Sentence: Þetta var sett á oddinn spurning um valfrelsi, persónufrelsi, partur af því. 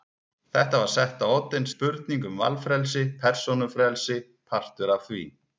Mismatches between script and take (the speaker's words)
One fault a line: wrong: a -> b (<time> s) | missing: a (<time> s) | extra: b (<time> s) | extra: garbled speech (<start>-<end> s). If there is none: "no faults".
no faults